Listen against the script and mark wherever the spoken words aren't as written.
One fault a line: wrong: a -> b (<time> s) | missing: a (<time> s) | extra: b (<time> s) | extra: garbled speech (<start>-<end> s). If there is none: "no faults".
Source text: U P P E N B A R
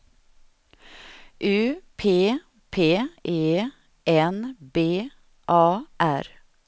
no faults